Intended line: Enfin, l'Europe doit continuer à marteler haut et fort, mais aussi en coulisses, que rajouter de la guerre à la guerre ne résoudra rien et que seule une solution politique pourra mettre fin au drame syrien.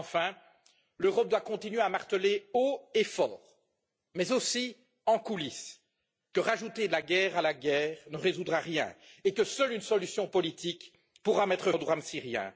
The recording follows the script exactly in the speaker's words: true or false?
false